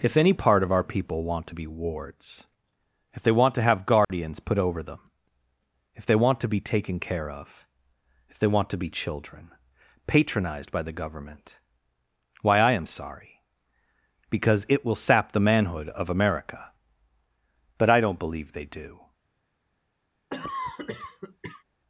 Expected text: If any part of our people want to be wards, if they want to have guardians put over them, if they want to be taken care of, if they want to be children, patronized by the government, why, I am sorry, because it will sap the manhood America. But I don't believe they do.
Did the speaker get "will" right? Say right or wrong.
right